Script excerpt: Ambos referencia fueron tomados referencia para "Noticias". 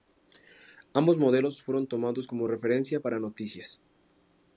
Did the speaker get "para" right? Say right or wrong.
right